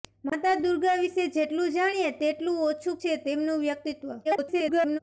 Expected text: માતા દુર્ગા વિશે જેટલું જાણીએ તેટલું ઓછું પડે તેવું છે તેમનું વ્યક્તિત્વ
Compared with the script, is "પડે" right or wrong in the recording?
wrong